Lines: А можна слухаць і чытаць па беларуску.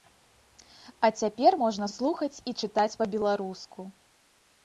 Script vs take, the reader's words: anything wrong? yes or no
yes